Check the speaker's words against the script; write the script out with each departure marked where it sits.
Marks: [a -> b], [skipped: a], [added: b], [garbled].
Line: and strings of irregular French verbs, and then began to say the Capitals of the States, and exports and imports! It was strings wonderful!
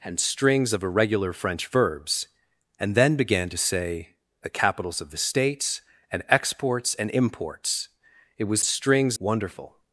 and strings of irregular French verbs, and then began to say the Capitals of the States, and exports and imports! It was strings wonderful!